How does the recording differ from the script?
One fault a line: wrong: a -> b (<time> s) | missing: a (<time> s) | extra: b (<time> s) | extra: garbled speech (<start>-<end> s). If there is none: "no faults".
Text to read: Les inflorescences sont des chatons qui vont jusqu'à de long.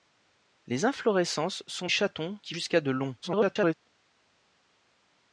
missing: des (1.9 s)
missing: vont (2.5 s)
extra: garbled speech (3.2-3.7 s)